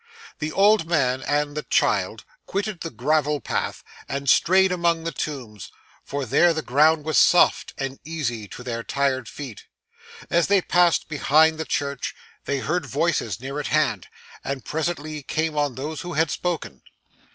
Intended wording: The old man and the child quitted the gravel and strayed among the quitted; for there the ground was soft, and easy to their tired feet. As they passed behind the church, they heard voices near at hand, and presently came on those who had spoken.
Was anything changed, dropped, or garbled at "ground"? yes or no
no